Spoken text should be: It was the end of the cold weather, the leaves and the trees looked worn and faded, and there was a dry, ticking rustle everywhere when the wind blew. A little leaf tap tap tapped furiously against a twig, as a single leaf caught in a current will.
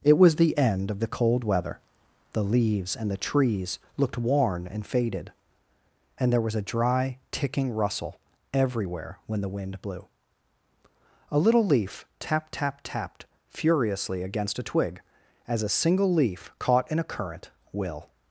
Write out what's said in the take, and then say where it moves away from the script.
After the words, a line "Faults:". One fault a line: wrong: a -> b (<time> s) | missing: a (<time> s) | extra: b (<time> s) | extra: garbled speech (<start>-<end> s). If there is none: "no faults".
It was the end of the cold weather, the leaves and the trees looked worn and faded, and there was a dry, ticking rustle everywhere when the wind blew. A little leaf tap tap tapped furiously against a twig, as a single leaf caught in a current will.
Faults:
no faults